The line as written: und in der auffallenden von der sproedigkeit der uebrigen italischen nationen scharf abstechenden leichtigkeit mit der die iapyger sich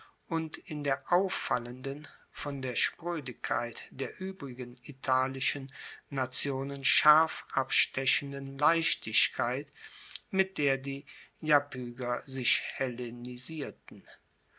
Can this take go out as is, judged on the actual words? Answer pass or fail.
pass